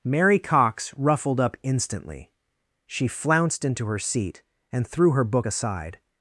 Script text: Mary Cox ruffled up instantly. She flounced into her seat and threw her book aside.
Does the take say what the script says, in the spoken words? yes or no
yes